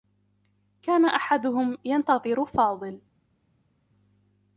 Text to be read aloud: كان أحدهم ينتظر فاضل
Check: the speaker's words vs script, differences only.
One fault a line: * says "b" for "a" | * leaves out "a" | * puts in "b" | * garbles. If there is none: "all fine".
all fine